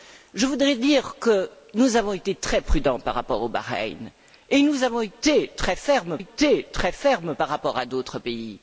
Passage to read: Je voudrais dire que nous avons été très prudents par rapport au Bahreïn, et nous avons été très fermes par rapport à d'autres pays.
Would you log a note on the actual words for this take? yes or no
yes